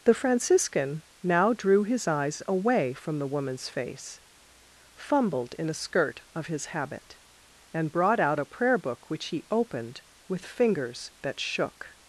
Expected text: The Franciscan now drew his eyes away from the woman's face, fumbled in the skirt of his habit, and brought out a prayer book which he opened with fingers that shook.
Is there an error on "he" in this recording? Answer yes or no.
no